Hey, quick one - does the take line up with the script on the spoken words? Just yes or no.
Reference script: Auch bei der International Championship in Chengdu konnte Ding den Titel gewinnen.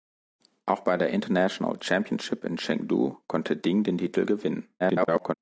no